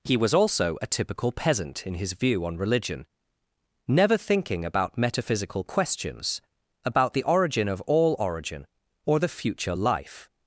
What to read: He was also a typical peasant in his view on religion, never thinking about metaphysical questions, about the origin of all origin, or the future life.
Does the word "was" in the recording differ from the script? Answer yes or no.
no